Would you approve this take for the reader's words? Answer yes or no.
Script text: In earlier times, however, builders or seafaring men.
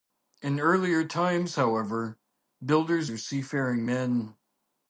yes